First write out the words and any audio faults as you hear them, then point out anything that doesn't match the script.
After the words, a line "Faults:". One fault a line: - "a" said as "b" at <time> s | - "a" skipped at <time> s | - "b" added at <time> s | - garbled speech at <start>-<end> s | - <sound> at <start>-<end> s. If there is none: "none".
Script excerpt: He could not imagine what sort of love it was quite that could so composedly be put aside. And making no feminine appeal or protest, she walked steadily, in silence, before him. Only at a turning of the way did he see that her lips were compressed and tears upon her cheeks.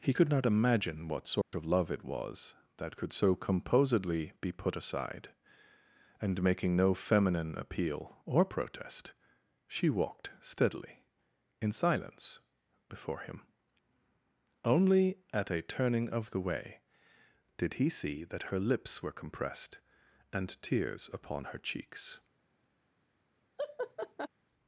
He could not imagine what sort of love it was that could so composedly be put aside. And making no feminine appeal or protest, she walked steadily, in silence, before him. Only at a turning of the way did he see that her lips were compressed and tears upon her cheeks.
Faults:
- dropout at 1.4-1.5 s
- "quite" skipped at 2.5 s
- laugh at 23.6-24.3 s